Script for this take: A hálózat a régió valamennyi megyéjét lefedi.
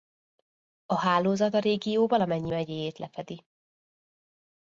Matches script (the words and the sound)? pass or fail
pass